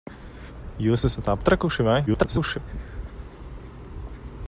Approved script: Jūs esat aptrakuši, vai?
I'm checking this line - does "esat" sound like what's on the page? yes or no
yes